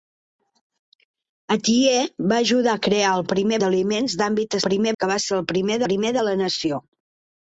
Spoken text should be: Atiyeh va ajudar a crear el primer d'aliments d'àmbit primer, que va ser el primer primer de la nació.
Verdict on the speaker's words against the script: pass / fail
pass